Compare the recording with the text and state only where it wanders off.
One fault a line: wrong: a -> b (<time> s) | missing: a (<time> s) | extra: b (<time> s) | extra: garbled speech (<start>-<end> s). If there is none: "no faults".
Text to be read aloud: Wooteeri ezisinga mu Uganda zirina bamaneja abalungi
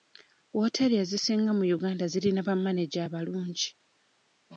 no faults